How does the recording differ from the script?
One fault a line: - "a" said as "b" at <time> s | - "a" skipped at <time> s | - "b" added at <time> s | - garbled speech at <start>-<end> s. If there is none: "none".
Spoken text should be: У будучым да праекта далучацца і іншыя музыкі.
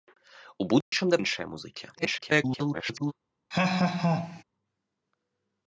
- "праекта далучацца і" skipped at 1.2 s
- garbled speech at 1.9-3.1 s